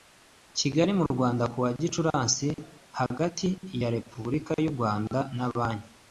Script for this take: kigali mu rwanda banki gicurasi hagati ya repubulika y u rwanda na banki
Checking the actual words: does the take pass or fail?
fail